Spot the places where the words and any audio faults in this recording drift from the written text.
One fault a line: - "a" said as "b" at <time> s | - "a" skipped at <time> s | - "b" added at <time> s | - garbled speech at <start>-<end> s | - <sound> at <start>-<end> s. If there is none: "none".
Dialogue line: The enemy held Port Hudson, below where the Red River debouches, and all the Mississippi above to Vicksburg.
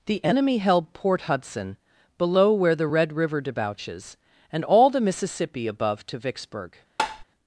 - tap at 7.0-7.2 s